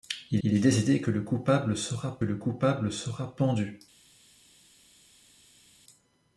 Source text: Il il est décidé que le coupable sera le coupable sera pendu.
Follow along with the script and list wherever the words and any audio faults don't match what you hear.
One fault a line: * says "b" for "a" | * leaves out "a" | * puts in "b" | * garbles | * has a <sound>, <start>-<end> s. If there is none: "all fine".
all fine